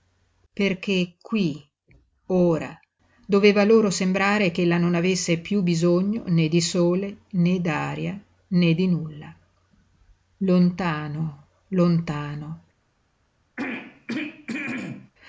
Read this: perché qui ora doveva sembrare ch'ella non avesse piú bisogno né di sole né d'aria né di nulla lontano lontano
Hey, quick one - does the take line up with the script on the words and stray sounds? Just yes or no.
no